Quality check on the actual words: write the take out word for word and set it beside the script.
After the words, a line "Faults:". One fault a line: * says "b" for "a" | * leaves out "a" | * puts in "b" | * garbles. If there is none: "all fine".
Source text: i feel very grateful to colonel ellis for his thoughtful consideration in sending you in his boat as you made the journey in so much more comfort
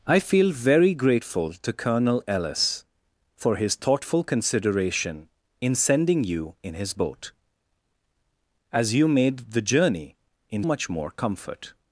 i feel very grateful to colonel ellis for his thoughtful consideration in sending you in his boat as you made the journey in much more comfort
Faults:
* leaves out "so"